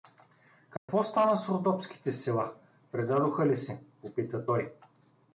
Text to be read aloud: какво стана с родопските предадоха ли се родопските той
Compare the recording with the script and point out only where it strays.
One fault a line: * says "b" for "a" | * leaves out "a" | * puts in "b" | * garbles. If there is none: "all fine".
* puts in "села"
* says "попита" for "родопските"